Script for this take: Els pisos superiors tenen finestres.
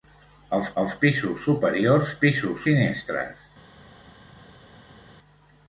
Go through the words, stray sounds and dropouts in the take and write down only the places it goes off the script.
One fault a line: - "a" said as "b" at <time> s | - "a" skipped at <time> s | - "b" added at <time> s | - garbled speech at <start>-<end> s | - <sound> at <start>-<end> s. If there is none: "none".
- "els" added at 0.8 s
- "tenen" said as "pisos" at 2.2 s